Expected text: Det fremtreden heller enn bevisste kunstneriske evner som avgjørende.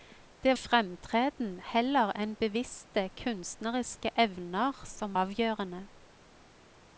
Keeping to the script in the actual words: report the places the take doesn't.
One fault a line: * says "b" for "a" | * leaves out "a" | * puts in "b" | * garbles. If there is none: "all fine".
all fine